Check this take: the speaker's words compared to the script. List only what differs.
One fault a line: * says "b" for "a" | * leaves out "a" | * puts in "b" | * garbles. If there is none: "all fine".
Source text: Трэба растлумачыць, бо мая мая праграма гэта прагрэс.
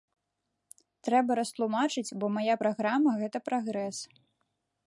* leaves out "мая"